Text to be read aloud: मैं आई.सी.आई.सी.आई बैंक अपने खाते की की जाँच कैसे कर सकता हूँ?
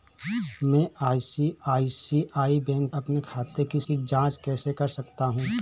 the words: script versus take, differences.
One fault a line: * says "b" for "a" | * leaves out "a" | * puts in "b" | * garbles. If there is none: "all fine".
all fine